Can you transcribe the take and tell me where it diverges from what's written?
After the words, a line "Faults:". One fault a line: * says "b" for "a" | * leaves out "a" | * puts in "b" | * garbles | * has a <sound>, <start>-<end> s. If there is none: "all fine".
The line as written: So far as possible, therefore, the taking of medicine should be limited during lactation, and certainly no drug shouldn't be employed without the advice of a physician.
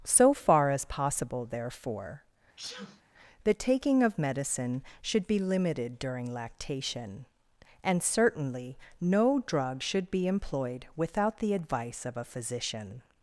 So far as possible, therefore, the taking of medicine should be limited during lactation, and certainly no drug should be employed without the advice of a physician.
Faults:
* has a sneeze, 2.6-3.0 s
* says "should" for "shouldn't"